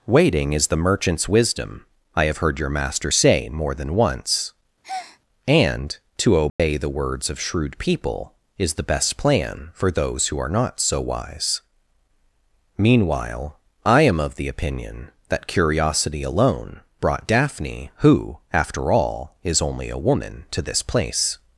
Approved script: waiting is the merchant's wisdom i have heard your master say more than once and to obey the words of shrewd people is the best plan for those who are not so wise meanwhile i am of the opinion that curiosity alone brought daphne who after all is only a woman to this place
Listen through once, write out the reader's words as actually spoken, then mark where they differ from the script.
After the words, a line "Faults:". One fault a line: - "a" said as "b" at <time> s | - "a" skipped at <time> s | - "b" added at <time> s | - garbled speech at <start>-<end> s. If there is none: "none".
waiting is the merchant's wisdom i have heard your master say more than once and to obey the words of shrewd people is the best plan for those who are not so wise meanwhile i am of the opinion that curiosity alone brought daphne who after all is only a woman to this place
Faults:
none